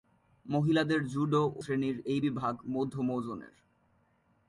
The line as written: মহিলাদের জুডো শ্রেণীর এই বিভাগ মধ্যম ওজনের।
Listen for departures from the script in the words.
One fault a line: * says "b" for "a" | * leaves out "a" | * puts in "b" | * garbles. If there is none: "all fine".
all fine